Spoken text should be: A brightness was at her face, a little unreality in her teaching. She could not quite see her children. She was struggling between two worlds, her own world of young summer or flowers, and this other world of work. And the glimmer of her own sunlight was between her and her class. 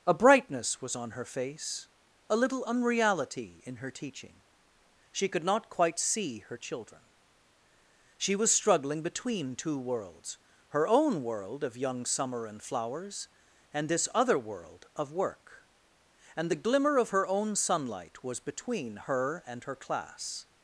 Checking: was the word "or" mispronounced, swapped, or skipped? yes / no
yes